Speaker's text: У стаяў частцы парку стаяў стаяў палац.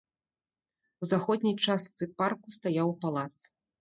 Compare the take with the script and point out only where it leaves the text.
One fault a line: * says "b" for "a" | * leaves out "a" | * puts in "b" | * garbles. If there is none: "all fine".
* says "заходняй" for "стаяў"
* leaves out "стаяў"